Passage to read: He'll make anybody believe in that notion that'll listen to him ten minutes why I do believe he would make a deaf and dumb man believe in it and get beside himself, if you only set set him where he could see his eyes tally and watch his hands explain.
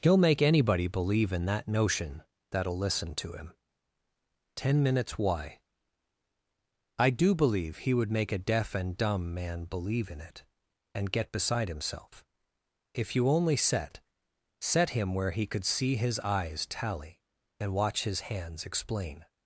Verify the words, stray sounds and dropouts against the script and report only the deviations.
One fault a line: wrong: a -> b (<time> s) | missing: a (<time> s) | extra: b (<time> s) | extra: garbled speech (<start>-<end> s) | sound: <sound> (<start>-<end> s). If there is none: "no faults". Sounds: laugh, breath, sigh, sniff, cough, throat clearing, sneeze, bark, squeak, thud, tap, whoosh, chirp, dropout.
no faults